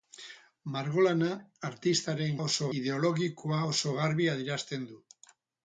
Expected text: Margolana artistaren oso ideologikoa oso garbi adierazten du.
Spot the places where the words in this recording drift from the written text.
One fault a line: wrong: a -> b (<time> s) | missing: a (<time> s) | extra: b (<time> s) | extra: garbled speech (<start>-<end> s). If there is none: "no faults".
no faults